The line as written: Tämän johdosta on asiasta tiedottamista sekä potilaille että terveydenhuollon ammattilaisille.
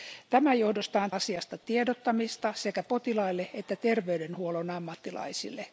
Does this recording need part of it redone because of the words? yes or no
no